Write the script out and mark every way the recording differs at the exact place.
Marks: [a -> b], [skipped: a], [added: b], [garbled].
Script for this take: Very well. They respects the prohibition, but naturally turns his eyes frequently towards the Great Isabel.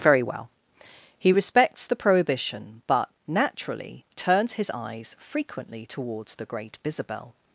Very well. [They -> He] respects the prohibition, but naturally turns his eyes frequently towards the Great Isabel.